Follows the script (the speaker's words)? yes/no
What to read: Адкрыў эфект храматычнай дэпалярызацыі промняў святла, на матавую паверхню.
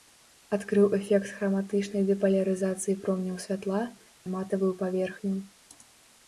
yes